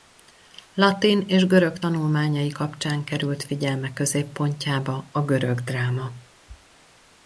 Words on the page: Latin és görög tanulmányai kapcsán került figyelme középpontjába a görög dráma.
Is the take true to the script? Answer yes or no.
yes